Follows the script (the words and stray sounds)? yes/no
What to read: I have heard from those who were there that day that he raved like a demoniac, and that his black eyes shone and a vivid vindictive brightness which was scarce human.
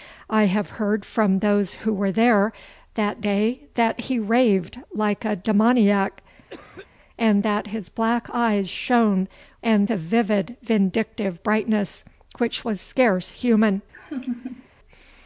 no